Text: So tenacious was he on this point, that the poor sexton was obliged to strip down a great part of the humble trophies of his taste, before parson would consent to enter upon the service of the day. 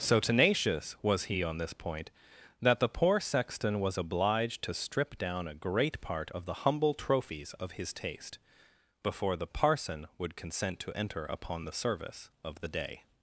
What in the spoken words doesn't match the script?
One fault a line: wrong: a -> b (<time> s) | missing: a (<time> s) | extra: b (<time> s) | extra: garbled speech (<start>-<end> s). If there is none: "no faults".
extra: the (9.4 s)